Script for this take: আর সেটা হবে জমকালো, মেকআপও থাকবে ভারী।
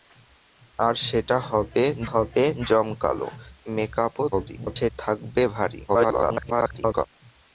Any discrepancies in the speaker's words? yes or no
yes